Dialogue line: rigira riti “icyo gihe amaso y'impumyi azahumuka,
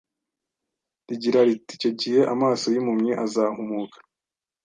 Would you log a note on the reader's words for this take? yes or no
no